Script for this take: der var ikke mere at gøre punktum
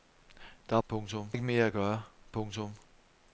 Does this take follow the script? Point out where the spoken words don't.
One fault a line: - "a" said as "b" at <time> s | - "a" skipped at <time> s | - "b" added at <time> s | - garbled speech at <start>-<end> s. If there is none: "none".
- "var" said as "punktum" at 0.9 s